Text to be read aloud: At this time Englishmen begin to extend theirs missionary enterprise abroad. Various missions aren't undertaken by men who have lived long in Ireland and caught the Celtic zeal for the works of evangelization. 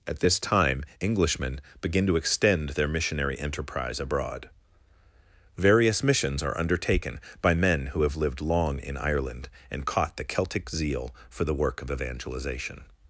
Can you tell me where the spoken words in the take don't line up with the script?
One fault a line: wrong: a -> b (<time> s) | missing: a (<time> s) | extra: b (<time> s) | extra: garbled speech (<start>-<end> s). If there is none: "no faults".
wrong: theirs -> their (2.7 s)
wrong: aren't -> are (6.4 s)
wrong: works -> work (11.5 s)